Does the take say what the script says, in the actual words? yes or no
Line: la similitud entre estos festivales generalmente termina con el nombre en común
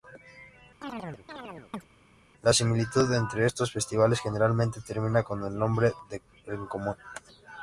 yes